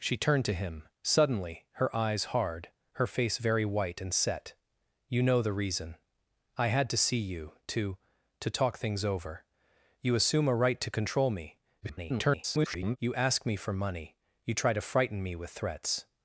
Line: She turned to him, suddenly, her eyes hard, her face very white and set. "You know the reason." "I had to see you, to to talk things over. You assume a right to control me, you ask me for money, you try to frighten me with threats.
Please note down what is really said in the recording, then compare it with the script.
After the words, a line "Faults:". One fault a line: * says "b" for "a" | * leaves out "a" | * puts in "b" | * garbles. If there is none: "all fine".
She turned to him, suddenly, her eyes hard, her face very white and set. "You know the reason." "I had to see you, to to talk things over. You assume a right to control me, [garbled] you ask me for money, you try to frighten me with threats.
Faults:
* garbles